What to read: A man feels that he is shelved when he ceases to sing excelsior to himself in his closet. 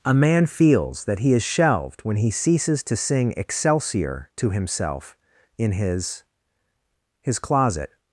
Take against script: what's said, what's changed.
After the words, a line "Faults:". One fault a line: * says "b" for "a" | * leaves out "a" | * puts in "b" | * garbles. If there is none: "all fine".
A man feels that he is shelved when he ceases to sing excelsior to himself in his his closet.
Faults:
* puts in "his"